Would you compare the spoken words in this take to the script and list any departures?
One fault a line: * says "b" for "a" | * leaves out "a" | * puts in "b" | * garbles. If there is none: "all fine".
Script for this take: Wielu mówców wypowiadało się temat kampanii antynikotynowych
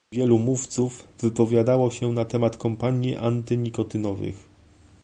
* puts in "na"